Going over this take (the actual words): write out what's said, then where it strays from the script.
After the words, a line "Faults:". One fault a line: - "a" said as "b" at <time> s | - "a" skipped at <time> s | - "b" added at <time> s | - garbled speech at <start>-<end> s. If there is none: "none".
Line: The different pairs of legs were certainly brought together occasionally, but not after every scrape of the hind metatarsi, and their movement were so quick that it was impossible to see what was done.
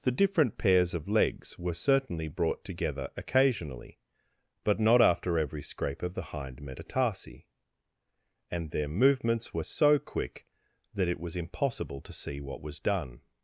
The different pairs of legs were certainly brought together occasionally, but not after every scrape of the hind metatarsi, and their movements were so quick that it was impossible to see what was done.
Faults:
- "movement" said as "movements" at 8.9 s